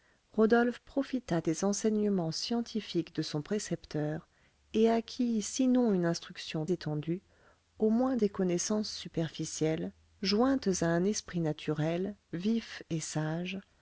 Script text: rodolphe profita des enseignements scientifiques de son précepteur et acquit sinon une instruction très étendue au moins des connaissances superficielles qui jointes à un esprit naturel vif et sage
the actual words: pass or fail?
fail